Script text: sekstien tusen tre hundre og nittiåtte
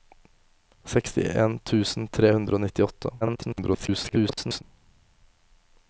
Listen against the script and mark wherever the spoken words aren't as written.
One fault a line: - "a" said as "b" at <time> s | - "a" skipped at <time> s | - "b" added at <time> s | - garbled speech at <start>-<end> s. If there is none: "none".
- garbled speech at 3.2-4.6 s